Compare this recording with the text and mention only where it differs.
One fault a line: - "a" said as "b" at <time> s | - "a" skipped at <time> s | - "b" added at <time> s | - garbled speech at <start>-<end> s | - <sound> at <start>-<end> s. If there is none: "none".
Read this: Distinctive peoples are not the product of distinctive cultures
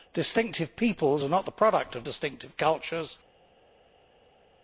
none